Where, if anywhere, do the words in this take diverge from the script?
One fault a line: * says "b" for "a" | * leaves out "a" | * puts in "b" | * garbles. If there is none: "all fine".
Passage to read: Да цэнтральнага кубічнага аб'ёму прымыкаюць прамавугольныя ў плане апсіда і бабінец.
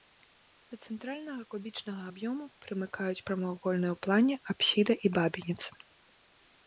all fine